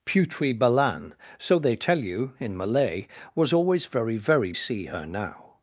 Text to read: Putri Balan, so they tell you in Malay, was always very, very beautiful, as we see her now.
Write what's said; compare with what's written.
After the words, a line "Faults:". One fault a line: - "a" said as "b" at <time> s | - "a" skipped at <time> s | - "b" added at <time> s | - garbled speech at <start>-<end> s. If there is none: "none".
Putri Balan, so they tell you in Malay, was always very, very see her now.
Faults:
- "beautiful as we" skipped at 4.5 s